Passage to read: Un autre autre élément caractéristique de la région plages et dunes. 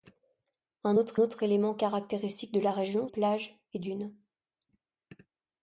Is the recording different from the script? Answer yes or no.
no